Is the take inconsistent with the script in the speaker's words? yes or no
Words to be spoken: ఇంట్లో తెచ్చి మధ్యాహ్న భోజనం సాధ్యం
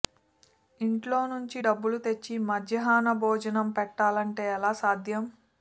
yes